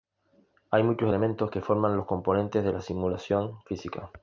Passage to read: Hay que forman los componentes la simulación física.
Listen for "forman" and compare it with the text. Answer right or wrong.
right